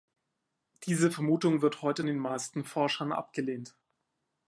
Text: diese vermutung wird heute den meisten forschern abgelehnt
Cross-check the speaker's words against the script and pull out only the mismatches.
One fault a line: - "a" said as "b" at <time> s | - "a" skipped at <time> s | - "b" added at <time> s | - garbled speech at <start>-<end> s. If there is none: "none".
none